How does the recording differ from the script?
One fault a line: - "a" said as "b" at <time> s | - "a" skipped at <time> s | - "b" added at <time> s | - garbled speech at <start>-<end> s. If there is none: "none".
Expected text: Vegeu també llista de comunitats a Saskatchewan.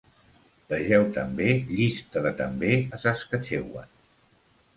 - "comunitats" said as "també" at 2.4 s